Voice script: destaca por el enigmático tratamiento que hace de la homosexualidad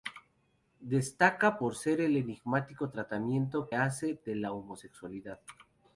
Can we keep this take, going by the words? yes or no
no